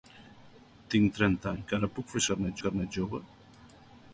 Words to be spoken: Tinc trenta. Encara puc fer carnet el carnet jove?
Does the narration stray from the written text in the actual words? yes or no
no